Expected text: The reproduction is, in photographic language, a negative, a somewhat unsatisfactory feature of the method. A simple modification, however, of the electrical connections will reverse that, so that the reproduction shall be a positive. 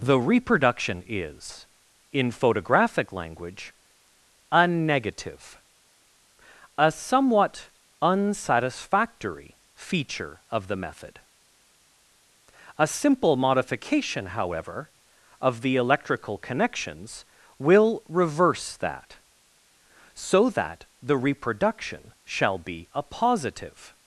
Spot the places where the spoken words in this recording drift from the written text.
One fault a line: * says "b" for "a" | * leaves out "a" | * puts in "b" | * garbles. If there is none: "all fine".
all fine